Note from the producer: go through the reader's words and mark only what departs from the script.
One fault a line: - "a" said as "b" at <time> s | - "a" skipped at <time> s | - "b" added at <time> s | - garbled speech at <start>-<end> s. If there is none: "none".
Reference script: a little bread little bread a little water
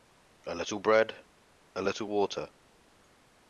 - "little bread" skipped at 1.1 s